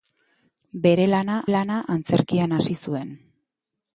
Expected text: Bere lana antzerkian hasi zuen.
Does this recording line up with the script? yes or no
no